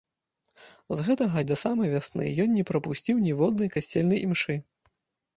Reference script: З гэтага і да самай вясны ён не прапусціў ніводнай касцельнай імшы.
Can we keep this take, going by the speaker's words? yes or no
yes